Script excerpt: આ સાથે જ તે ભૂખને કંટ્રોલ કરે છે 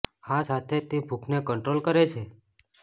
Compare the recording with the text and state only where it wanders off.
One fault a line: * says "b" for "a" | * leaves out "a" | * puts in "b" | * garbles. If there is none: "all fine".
all fine